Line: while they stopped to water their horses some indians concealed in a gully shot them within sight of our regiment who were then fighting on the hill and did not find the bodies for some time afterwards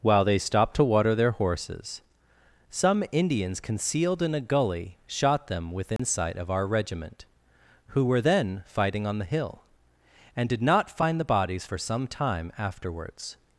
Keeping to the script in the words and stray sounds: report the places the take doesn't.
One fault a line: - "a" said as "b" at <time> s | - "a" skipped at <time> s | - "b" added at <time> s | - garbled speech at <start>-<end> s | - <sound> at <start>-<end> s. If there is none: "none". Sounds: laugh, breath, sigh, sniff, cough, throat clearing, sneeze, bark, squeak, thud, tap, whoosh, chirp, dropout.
- dropout at 6.0-6.0 s